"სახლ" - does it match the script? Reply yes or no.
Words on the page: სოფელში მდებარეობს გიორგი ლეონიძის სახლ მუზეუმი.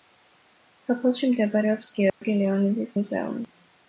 no